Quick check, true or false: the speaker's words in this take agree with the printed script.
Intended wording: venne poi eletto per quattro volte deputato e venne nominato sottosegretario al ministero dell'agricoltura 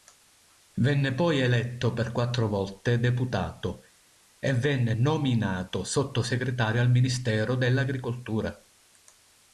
true